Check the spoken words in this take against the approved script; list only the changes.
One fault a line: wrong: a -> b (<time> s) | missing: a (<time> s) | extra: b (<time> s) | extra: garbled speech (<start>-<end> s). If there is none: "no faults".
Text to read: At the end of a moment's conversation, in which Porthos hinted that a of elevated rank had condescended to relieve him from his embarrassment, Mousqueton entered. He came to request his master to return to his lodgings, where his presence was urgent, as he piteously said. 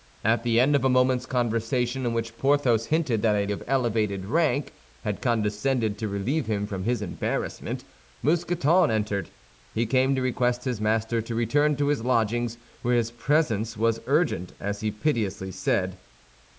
no faults